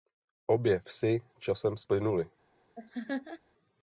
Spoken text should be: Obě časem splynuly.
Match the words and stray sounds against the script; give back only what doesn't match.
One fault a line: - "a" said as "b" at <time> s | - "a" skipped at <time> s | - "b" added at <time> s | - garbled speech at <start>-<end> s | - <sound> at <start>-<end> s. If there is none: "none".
- "vsi" added at 0.8 s
- laugh at 2.7-3.4 s